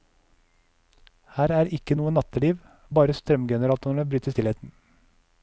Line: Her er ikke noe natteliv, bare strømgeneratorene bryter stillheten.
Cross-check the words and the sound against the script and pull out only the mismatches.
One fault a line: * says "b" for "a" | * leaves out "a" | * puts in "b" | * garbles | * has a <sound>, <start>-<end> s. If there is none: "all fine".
all fine